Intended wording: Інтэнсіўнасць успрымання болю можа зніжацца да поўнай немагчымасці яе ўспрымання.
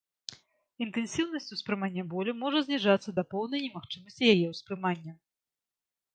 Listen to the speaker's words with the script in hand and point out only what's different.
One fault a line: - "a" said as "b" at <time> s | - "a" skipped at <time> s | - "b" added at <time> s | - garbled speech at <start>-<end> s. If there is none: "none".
none